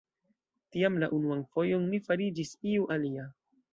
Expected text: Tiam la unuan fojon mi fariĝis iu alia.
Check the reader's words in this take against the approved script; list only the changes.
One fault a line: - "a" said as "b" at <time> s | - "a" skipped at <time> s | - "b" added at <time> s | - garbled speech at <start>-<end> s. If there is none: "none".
none